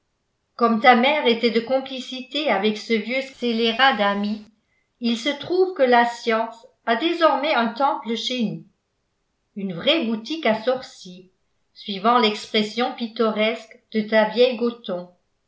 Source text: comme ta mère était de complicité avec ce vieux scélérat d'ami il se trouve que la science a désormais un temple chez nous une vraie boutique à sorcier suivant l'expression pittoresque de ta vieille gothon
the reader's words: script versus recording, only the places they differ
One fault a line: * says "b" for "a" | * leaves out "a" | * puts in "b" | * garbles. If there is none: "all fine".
all fine